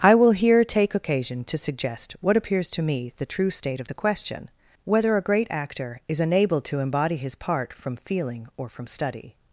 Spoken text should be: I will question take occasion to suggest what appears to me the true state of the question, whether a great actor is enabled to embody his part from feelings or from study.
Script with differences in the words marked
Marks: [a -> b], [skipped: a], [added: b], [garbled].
I will [question -> here] take occasion to suggest what appears to me the true state of the question, whether a great actor is enabled to embody his part from [feelings -> feeling] or from study.